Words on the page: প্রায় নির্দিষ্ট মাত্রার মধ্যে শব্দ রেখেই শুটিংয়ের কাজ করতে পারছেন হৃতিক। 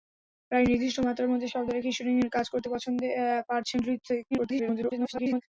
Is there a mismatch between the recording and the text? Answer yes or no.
yes